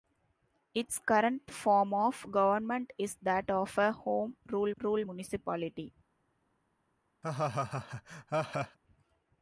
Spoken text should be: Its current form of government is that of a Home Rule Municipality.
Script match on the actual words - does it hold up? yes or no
no